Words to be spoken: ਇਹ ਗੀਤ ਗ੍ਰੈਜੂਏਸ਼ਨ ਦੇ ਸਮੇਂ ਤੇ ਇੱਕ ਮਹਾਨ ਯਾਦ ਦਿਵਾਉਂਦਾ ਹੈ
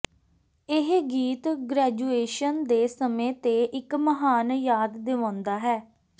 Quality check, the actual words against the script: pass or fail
pass